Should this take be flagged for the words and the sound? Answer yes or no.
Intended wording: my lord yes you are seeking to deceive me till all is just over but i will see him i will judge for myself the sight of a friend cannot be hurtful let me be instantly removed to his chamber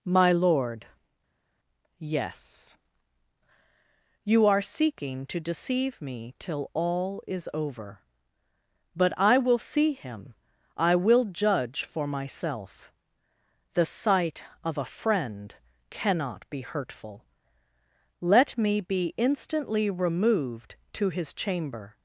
yes